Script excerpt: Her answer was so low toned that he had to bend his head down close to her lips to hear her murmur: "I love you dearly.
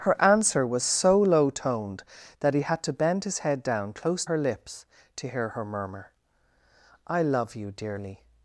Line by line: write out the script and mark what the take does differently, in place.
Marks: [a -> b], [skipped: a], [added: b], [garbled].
Her answer was so low toned that he had to bend his head down close [skipped: to] her lips to hear her murmur: "I love you dearly.